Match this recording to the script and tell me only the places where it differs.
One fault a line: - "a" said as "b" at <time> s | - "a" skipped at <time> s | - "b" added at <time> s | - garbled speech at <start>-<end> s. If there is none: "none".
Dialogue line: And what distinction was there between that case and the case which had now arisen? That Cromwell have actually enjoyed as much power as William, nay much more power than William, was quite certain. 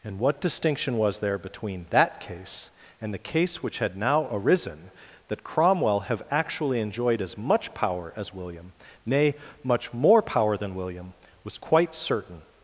none